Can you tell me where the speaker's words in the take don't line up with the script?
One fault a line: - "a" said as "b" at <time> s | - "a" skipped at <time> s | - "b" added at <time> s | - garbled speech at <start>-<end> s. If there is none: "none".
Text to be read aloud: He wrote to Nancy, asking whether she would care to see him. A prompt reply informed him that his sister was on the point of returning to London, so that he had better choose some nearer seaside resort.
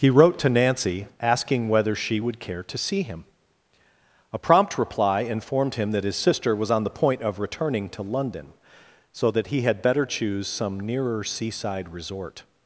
none